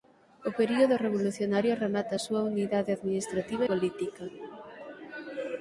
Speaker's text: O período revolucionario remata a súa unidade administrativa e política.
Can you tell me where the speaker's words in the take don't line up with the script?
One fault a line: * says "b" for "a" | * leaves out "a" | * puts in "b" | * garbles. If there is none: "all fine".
* leaves out "e"